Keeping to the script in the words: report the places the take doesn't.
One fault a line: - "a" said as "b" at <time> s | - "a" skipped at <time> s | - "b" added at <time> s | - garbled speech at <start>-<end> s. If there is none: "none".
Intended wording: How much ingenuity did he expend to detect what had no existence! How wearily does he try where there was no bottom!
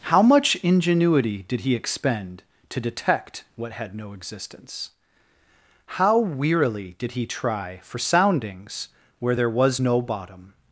- "does" said as "did" at 7.0 s
- "for soundings" added at 7.8 s